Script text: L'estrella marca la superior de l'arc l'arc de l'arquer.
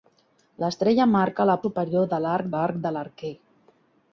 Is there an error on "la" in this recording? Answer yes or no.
no